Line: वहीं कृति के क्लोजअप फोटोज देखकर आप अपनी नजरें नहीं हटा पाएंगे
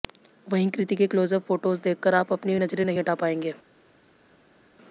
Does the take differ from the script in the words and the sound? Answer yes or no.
no